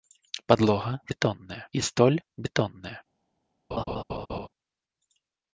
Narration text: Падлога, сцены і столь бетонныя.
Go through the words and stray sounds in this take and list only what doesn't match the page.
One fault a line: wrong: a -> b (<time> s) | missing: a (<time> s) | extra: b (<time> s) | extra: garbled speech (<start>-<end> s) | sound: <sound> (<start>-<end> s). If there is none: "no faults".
wrong: сцены -> бетонныя (1.1 s)
sound: laugh (3.7-4.5 s)